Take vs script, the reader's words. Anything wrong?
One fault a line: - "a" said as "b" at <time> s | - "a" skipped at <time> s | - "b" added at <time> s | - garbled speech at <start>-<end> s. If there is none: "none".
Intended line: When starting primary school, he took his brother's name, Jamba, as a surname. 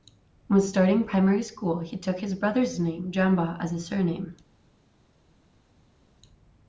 none